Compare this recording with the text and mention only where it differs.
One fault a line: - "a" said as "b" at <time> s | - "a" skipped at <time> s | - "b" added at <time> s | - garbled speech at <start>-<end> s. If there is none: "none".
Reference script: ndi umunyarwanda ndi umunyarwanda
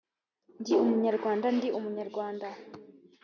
none